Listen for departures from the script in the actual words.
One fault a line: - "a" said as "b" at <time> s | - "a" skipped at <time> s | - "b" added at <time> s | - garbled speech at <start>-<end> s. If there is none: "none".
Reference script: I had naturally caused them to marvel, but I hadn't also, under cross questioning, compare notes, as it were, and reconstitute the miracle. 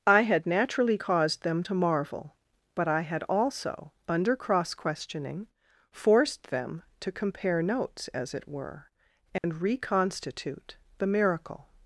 - "hadn't" said as "had" at 3.0 s
- "forced them to" added at 5.9 s